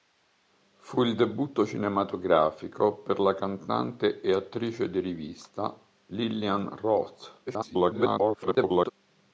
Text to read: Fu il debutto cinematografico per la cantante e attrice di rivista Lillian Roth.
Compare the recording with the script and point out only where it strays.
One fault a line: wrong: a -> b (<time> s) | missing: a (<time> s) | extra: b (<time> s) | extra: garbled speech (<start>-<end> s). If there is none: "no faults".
extra: garbled speech (7.5-8.9 s)